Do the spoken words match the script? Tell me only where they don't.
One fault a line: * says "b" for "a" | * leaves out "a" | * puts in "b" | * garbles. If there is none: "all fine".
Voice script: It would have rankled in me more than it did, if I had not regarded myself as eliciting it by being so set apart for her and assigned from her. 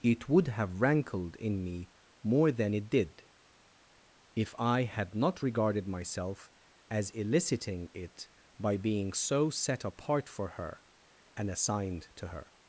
* says "to" for "from"